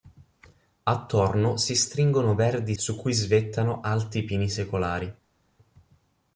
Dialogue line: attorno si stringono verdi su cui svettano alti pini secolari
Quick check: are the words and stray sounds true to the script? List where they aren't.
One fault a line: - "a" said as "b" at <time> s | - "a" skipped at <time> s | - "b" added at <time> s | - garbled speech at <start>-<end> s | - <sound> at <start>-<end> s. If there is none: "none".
none